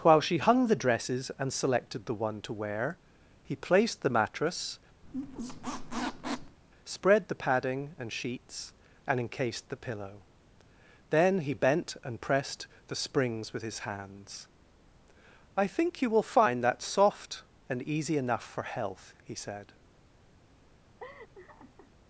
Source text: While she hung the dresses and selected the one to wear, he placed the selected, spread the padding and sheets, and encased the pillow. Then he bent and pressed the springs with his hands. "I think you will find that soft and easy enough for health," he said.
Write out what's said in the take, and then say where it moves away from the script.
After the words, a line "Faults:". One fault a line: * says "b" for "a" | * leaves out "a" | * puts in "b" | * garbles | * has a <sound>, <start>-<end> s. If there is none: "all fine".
While she hung the dresses and selected the one to wear, he placed the mattress, spread the padding and sheets, and encased the pillow. Then he bent and pressed the springs with his hands. "I think you will find that soft and easy enough for health," he said.
Faults:
* says "mattress" for "selected"
* has a squeak, 5.0-6.6 s
* has a laugh, 21.0-21.9 s